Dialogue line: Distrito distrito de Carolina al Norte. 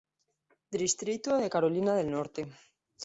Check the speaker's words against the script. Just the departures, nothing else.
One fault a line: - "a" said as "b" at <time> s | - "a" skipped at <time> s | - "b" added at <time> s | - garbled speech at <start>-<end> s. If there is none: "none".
- "distrito" skipped at 1.4 s
- "al" said as "del" at 1.9 s